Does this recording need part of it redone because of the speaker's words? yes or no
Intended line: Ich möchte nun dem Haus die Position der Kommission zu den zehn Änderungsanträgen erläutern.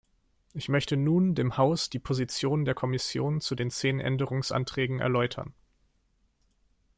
no